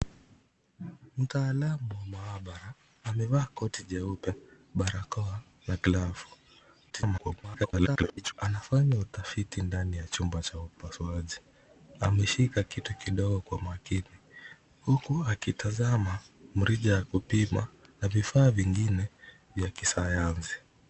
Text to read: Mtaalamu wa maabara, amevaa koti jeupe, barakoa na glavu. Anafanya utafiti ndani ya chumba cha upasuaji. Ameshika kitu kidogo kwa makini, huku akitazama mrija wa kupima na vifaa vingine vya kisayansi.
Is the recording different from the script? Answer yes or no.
yes